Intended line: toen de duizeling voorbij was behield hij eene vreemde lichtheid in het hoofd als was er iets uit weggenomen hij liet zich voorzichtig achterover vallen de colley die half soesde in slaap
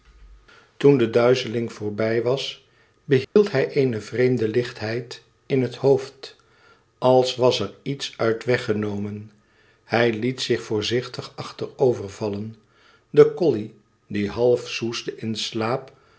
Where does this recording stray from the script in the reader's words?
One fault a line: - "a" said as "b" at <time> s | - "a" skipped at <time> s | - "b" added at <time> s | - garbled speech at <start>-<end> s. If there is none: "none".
none